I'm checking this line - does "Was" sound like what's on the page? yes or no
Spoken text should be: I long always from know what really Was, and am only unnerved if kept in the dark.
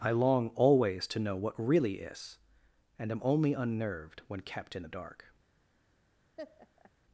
no